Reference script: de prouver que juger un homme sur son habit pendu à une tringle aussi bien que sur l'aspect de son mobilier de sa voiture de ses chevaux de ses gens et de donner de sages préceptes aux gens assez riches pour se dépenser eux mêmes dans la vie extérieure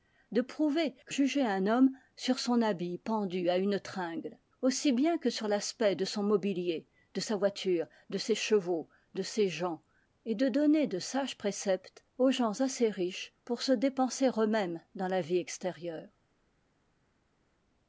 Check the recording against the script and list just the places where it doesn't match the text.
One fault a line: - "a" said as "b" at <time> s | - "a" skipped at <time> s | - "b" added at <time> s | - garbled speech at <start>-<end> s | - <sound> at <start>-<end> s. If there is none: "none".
none